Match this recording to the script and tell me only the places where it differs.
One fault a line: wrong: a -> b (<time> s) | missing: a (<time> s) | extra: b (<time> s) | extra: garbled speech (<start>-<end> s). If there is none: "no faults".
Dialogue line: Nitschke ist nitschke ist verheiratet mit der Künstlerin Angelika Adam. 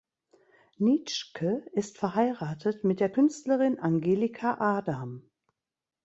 missing: nitschke ist (2.0 s)